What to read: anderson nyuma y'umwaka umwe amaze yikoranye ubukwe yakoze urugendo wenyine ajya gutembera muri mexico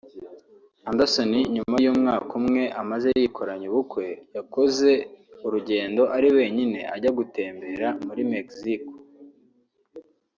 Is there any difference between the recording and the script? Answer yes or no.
yes